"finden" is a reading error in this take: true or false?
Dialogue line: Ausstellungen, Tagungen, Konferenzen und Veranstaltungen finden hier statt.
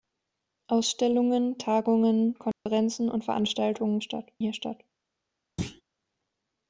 true